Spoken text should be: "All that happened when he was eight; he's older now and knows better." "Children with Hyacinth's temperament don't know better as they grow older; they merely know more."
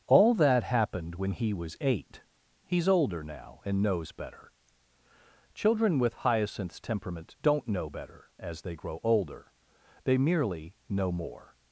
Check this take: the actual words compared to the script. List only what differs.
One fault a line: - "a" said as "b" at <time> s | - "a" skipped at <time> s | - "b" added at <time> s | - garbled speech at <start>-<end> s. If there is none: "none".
none